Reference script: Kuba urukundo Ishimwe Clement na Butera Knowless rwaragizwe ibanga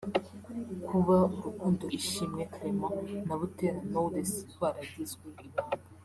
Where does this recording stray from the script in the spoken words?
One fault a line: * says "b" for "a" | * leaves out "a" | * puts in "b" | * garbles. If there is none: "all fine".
all fine